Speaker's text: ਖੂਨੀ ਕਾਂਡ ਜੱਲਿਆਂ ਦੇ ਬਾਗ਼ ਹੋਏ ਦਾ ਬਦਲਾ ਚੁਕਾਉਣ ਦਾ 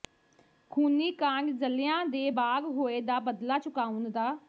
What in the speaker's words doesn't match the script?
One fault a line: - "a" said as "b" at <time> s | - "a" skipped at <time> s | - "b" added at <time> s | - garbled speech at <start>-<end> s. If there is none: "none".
none